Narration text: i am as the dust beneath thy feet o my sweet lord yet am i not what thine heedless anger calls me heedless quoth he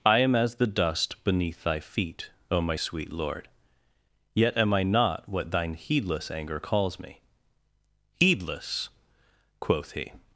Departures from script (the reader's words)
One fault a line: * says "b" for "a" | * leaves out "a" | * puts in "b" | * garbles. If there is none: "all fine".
all fine